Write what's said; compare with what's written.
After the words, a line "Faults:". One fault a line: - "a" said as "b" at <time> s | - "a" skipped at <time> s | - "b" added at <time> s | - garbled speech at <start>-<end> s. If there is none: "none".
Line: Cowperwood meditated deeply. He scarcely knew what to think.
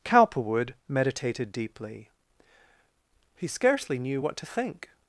Cowperwood meditated deeply. He scarcely knew what to think.
Faults:
none